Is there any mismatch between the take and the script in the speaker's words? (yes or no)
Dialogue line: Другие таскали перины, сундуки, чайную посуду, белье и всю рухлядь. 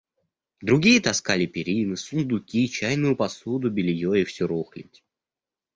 no